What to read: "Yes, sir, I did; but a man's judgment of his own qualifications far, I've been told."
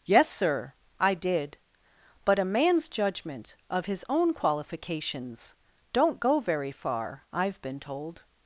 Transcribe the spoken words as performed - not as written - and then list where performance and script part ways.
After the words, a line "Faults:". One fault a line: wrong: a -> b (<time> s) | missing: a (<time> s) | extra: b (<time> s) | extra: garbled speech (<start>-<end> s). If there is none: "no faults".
"Yes, sir, I did; but a man's judgment of his own qualifications don't go very far, I've been told."
Faults:
extra: don't go very (5.9 s)